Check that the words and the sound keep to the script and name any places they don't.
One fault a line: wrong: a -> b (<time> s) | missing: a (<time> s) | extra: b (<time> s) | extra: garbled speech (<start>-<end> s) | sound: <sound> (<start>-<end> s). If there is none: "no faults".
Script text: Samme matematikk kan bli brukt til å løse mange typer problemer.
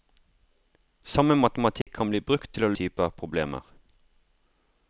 sound: dropout (1.8-1.9 s)
missing: løse mange (2.7 s)